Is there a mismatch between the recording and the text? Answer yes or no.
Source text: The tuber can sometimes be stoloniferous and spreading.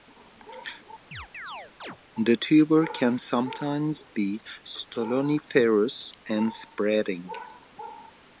no